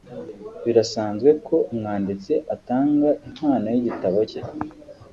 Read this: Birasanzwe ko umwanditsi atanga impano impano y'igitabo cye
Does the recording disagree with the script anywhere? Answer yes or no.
yes